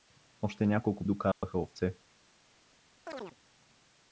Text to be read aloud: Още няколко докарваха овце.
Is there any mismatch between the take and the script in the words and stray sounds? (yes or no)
yes